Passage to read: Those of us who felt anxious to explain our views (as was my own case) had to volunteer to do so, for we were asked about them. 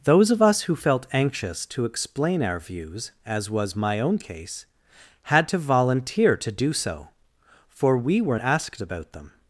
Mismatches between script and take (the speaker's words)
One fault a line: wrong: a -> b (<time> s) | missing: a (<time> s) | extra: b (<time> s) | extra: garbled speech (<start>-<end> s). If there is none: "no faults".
no faults